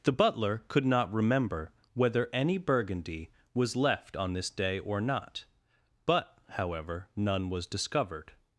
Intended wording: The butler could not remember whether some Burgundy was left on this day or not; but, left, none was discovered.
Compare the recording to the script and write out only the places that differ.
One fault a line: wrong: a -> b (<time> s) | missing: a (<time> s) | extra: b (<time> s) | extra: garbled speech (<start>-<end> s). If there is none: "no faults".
wrong: some -> any (2.3 s)
wrong: left -> however (6.5 s)